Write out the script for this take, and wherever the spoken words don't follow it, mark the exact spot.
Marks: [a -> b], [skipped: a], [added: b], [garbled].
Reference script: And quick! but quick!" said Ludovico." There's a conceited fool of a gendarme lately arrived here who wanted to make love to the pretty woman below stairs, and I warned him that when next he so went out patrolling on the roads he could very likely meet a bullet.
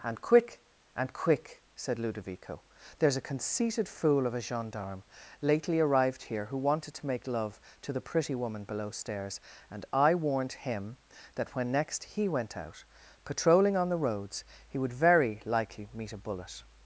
And quick! [but -> and] quick!" said Ludovico." There's a conceited fool of a gendarme lately arrived here who wanted to make love to the pretty woman below stairs, and I warned him that when next he [skipped: so] went out patrolling on the roads he [could -> would] very likely meet a bullet.